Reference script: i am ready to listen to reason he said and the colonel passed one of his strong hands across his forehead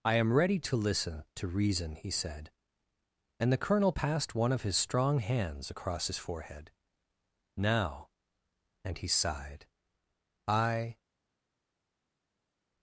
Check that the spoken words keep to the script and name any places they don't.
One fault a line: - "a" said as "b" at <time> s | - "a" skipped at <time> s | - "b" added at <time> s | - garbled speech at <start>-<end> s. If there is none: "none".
- "now and he sighed i" added at 7.5 s